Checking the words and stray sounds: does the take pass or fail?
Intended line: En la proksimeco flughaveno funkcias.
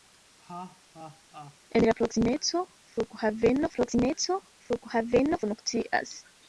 fail